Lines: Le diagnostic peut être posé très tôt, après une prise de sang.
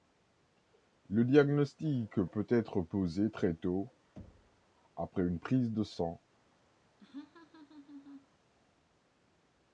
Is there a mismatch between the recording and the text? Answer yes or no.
no